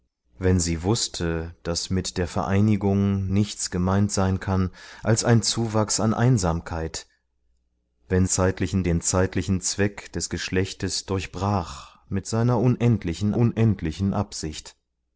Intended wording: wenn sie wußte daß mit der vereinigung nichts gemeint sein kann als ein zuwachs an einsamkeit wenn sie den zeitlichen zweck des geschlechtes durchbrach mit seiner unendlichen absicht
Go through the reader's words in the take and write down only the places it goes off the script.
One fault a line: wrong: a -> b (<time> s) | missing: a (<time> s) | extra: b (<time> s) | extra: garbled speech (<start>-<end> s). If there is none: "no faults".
wrong: sie -> zeitlichen (8.3 s)
extra: unendlichen (13.3 s)